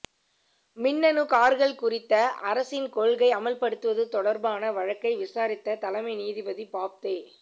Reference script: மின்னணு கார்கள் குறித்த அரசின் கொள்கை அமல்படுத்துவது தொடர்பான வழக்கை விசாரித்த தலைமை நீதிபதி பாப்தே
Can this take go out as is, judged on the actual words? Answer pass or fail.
pass